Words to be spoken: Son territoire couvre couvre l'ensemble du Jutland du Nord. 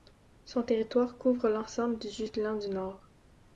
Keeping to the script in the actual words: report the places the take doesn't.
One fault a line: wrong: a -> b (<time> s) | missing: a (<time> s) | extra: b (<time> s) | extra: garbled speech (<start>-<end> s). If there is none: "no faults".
missing: couvre (1.5 s)